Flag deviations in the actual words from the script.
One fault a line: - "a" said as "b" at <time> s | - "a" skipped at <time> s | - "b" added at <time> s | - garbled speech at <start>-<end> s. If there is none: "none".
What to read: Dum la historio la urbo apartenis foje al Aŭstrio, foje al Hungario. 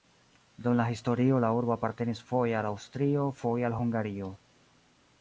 none